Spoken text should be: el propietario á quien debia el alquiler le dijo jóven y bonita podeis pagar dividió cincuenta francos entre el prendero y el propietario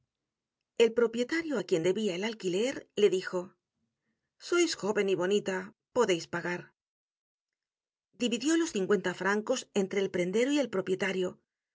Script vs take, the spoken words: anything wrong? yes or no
yes